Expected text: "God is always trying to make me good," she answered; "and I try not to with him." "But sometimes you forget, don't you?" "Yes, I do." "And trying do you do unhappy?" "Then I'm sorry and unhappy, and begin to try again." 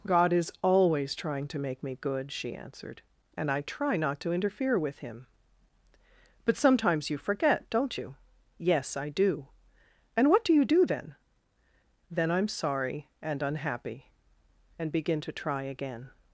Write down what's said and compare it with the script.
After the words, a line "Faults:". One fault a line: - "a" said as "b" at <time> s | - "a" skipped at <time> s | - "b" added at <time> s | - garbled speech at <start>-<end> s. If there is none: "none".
"God is always trying to make me good," she answered; "and I try not to interfere with him." "But sometimes you forget, don't you?" "Yes, I do." "And what do you do then?" "Then I'm sorry and unhappy, and begin to try again."
Faults:
- "interfere" added at 4.3 s
- "trying" said as "what" at 10.3 s
- "unhappy" said as "then" at 10.9 s